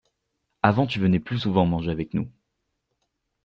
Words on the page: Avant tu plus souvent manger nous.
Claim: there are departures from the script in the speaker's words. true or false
true